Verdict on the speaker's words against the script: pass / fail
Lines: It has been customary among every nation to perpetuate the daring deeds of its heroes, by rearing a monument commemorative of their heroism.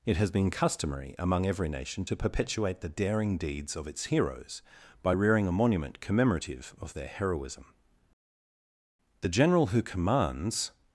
fail